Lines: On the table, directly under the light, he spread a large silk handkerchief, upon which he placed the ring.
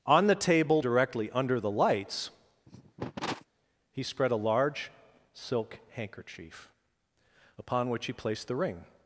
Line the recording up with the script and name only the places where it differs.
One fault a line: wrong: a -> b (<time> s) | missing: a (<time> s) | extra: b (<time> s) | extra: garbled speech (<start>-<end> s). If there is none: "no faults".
wrong: light -> lights (1.7 s)